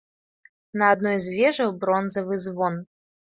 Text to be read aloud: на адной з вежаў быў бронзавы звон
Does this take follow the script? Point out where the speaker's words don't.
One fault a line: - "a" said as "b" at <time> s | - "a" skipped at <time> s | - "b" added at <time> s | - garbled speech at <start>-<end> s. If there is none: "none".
- "быў" skipped at 1.7 s